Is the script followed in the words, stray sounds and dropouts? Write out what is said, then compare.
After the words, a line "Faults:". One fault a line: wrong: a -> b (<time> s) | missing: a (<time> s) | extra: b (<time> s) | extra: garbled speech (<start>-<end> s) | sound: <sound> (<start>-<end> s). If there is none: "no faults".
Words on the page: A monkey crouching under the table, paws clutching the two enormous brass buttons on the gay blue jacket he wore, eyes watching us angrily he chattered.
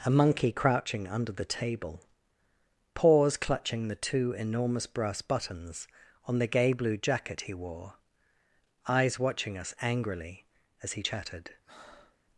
A monkey crouching under the table, paws clutching the two enormous brass buttons on the gay blue jacket he wore, eyes watching us angrily as he chattered.
Faults:
extra: as (10.8 s)
sound: breath (11.6-12.2 s)